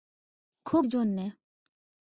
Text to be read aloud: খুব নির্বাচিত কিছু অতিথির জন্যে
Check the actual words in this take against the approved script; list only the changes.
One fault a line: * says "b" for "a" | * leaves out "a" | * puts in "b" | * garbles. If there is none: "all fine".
* leaves out "নির্বাচিত কিছু অতিথির"